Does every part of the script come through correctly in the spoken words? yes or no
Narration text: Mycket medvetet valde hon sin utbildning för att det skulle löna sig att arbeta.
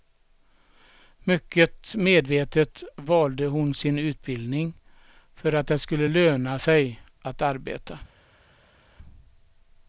yes